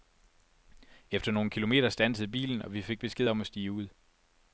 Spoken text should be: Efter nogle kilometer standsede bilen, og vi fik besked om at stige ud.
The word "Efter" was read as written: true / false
true